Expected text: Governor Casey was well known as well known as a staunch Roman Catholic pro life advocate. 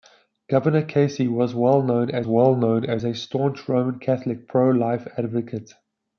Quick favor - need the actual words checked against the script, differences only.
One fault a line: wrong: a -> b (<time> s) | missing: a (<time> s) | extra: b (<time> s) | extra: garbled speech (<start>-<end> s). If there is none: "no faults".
no faults